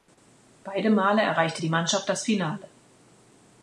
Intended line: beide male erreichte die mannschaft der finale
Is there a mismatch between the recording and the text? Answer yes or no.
yes